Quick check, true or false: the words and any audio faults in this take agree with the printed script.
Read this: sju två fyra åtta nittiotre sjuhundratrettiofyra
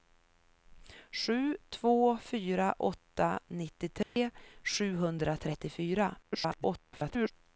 false